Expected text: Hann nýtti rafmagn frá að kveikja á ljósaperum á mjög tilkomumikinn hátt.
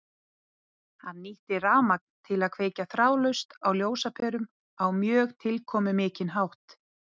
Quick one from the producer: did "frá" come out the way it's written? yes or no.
no